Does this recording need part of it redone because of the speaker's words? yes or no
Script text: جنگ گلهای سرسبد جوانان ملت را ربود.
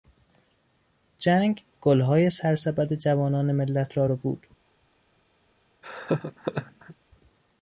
no